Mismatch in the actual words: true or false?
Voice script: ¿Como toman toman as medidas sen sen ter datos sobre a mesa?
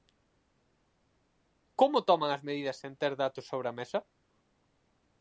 true